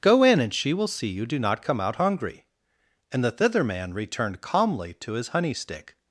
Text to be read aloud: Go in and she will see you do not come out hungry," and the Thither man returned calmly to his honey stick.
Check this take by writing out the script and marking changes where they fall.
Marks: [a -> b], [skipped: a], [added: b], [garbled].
Go in and she will see you do not come out hungry," and the Thither man returned calmly to his honey stick.